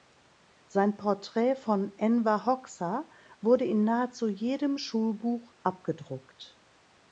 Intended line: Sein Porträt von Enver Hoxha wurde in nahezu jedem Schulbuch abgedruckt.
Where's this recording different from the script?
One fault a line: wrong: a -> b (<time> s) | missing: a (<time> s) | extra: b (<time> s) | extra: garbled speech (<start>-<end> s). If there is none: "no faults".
no faults